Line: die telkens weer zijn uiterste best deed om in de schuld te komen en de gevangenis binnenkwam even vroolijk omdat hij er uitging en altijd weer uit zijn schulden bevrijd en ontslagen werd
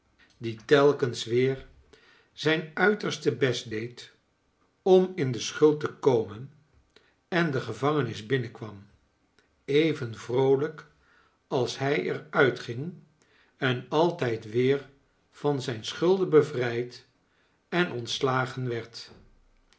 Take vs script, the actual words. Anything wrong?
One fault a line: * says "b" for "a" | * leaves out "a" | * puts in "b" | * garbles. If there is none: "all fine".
* says "als" for "omdat"
* says "van" for "uit"